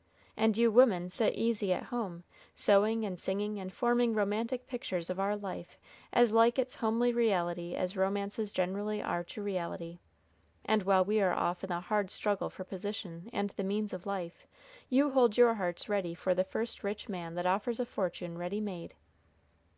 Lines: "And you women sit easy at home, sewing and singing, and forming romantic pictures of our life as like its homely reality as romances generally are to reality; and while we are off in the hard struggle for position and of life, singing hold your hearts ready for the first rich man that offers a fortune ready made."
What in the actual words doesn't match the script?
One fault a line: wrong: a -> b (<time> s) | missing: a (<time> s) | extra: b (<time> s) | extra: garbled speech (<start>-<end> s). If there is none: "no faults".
extra: the means (13.5 s)
wrong: singing -> you (14.9 s)